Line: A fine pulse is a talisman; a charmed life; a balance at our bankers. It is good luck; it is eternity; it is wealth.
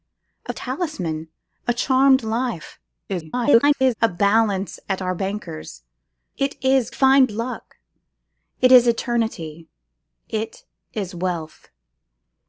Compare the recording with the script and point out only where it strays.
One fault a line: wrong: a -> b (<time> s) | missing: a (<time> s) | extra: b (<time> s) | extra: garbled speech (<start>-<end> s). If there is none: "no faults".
missing: fine pulse is (0.5 s)
extra: garbled speech (3.1-3.9 s)
wrong: good -> fine (6.9 s)